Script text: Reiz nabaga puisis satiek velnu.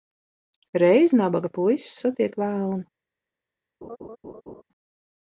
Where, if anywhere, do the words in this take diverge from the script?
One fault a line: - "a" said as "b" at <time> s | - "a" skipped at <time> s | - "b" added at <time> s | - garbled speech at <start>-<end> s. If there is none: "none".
none